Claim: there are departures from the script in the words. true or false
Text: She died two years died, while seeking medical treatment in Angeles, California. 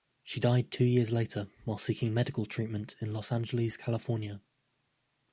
true